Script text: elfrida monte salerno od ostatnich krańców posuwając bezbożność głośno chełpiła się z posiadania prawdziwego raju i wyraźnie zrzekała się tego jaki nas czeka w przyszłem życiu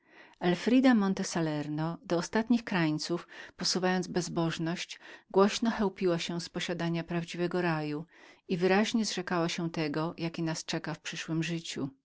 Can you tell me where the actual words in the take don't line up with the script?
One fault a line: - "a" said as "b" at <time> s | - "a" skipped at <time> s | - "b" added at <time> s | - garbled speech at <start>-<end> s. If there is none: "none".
- "od" said as "do" at 2.0 s